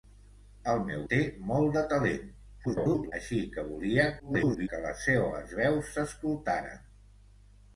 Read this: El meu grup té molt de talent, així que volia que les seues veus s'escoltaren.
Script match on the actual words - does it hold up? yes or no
no